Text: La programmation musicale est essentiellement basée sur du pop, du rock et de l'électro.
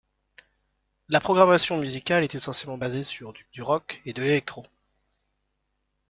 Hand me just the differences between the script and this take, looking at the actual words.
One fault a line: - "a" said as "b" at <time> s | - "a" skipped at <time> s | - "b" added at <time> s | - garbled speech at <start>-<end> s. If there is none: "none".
- "pop" skipped at 3.4 s